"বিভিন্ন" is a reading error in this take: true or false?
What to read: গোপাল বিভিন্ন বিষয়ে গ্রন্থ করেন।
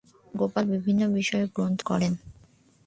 false